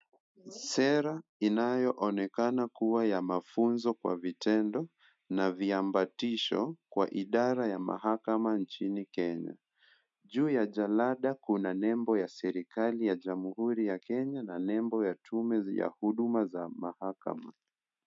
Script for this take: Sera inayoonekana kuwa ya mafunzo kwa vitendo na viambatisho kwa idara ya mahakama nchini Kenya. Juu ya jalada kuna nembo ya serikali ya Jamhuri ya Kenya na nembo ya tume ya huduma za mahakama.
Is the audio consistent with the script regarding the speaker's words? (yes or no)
yes